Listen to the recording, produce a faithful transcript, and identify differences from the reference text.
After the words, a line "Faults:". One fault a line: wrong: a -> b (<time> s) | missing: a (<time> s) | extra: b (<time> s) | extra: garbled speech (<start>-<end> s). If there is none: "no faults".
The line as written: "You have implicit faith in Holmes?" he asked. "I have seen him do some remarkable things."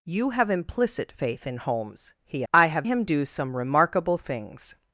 "You have implicit faith in Holmes?" he. "I have him do some remarkable things."
Faults:
missing: asked (2.4 s)
missing: seen (2.9 s)